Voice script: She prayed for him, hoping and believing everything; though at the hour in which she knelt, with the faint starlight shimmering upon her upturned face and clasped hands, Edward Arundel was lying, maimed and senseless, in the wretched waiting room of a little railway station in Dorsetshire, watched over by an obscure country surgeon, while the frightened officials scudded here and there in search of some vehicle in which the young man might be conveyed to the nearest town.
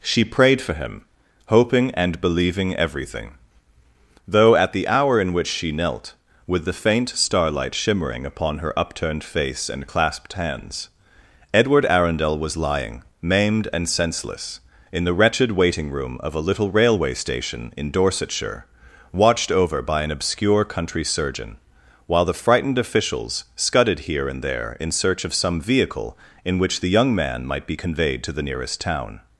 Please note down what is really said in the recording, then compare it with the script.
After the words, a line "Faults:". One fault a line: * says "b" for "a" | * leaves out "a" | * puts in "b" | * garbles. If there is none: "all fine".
She prayed for him, hoping and believing everything; though at the hour in which she knelt, with the faint starlight shimmering upon her upturned face and clasped hands, Edward Arundel was lying, maimed and senseless, in the wretched waiting room of a little railway station in Dorsetshire, watched over by an obscure country surgeon, while the frightened officials scudded here and there in search of some vehicle in which the young man might be conveyed to the nearest town.
Faults:
all fine